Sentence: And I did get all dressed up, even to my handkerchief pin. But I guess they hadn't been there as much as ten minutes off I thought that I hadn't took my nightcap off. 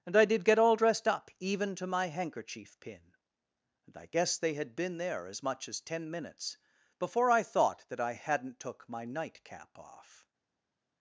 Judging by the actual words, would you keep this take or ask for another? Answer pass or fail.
fail